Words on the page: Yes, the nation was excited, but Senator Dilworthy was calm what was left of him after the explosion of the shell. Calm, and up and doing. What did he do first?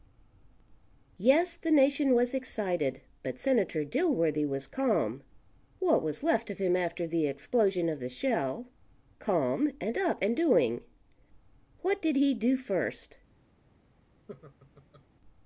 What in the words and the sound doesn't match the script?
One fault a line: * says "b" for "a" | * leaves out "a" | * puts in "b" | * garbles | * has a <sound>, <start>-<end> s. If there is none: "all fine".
* has a laugh, 14.3-15.0 s